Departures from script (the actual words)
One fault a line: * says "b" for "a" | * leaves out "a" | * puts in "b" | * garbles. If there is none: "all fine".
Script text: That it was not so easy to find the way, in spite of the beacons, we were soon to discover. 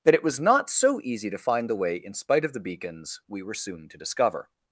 all fine